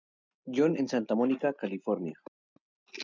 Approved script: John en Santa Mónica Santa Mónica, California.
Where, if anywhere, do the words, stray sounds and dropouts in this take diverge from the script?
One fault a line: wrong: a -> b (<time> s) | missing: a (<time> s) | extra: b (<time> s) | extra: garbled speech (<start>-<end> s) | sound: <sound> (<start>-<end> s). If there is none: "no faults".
missing: Santa Mónica (1.5 s)